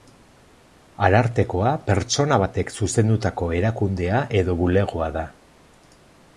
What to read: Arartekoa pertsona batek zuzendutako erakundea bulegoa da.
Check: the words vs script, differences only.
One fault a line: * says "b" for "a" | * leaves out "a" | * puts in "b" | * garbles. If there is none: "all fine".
* puts in "edo"